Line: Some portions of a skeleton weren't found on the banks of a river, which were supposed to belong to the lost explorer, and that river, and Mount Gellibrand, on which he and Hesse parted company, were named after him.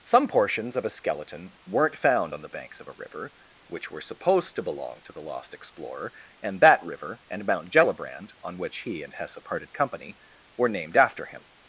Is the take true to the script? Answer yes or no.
yes